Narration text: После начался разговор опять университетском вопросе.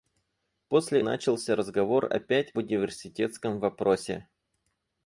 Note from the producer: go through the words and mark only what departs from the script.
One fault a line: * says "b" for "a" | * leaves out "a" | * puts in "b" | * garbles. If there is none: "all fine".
all fine